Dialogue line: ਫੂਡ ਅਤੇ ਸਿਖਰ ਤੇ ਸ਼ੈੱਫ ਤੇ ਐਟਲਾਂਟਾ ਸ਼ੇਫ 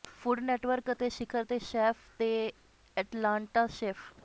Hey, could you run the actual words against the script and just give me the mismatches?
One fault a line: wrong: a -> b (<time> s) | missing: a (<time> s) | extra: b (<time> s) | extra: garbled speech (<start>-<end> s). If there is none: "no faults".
extra: ਨੈਟਵਰਕ (0.4 s)